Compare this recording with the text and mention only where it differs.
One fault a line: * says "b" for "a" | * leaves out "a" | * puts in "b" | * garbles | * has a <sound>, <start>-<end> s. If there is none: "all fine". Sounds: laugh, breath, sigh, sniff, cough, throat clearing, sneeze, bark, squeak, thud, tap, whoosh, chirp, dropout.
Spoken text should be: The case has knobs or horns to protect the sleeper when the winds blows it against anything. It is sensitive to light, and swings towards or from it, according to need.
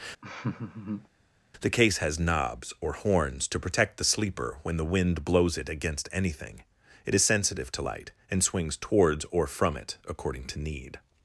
* has a laugh, 0.2-1.1 s
* says "wind" for "winds"